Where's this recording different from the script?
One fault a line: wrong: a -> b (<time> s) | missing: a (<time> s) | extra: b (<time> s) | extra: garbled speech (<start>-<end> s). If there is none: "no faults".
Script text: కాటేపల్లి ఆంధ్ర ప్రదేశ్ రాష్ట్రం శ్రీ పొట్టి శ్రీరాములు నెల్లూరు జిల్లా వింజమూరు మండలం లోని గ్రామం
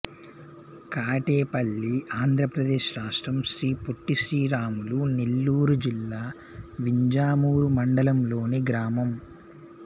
no faults